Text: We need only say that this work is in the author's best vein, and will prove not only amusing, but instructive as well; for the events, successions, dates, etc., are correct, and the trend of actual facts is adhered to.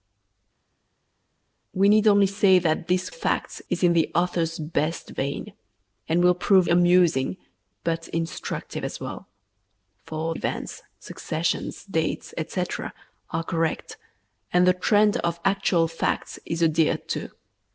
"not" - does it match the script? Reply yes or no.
no